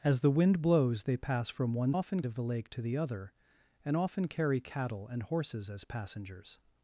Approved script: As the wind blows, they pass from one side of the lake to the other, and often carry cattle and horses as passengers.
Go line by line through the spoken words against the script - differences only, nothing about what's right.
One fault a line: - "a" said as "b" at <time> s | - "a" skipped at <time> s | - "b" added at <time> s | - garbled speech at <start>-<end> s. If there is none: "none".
- "side" said as "often" at 1.9 s